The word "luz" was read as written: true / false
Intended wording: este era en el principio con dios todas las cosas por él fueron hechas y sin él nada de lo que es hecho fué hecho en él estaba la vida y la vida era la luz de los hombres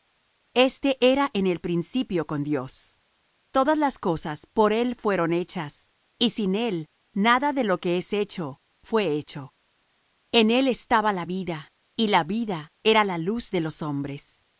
true